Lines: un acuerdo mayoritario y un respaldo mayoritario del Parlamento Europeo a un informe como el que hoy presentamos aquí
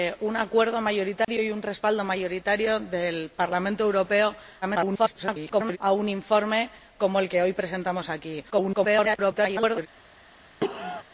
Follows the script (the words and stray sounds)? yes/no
no